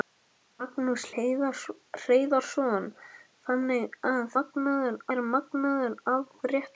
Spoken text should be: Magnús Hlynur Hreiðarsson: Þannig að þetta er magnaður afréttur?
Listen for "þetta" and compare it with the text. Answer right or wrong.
wrong